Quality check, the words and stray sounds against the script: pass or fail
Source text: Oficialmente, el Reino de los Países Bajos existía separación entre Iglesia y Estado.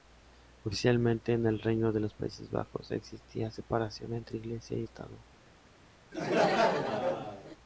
fail